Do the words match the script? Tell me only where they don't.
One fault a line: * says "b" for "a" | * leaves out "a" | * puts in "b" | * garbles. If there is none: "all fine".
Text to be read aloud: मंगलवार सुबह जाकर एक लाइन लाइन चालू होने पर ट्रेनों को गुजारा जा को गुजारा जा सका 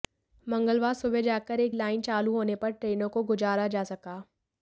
* leaves out "लाइन"
* leaves out "को गुजारा जा"